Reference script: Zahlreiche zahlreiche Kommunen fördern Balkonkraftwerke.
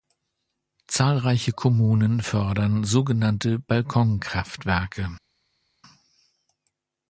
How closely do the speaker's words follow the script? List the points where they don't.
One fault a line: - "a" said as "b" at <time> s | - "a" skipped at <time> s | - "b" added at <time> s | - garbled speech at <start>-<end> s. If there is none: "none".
- "zahlreiche" skipped at 1.5 s
- "sogenannte" added at 2.8 s